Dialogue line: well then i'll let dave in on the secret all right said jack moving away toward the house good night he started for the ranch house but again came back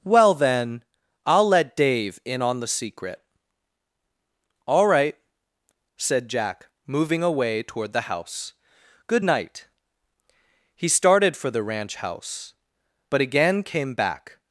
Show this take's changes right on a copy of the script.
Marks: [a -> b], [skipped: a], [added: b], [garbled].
well then i'll let dave in on the secret all right said jack moving away toward the house good night he started for the ranch house but again came back